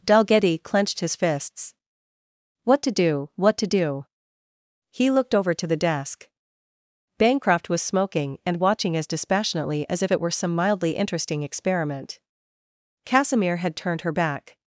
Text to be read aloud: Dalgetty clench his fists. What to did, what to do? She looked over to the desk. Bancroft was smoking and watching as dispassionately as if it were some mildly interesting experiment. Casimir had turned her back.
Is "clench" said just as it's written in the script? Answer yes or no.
no